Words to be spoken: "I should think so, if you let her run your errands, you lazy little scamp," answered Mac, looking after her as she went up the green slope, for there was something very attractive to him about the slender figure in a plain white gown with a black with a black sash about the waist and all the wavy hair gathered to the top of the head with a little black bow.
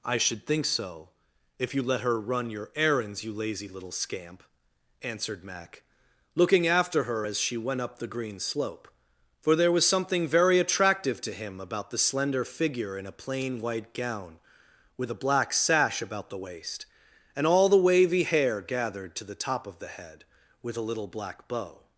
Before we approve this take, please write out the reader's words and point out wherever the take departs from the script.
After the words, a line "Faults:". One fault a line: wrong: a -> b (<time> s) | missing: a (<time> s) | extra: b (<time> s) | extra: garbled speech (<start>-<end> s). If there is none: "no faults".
"I should think so, if you let her run your errands, you lazy little scamp," answered Mac, looking after her as she went up the green slope, for there was something very attractive to him about the slender figure in a plain white gown with a black sash about the waist and all the wavy hair gathered to the top of the head with a little black bow.
Faults:
missing: with a black (15.5 s)